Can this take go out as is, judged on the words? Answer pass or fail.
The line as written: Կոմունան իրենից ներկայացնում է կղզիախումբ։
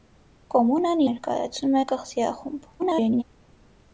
fail